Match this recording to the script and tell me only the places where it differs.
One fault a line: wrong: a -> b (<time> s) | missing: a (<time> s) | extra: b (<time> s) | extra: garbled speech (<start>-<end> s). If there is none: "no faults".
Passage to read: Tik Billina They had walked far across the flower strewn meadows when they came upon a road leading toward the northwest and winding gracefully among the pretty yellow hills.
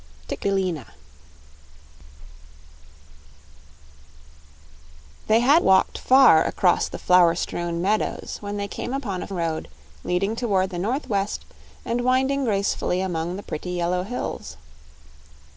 no faults